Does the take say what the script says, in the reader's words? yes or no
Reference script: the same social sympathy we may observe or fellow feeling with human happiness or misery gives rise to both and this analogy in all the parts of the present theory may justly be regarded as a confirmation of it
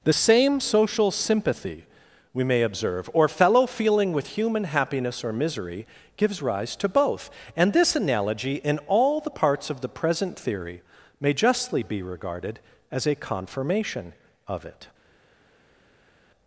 yes